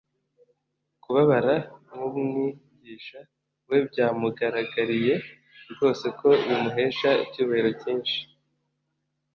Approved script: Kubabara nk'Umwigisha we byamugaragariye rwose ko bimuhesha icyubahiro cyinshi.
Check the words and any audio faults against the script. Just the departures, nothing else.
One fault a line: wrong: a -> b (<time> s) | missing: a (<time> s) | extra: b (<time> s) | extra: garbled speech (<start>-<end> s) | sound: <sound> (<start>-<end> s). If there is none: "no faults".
no faults